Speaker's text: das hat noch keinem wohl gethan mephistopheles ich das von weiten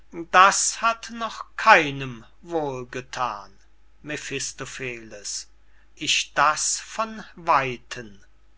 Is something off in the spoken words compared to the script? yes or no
no